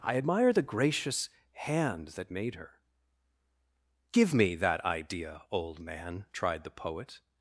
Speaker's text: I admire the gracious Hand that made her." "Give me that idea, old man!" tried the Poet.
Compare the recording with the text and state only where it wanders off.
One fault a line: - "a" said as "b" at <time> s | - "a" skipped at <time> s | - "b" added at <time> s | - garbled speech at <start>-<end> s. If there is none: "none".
none